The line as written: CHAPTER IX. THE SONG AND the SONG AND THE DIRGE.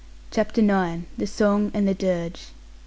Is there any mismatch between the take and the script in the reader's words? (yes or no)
yes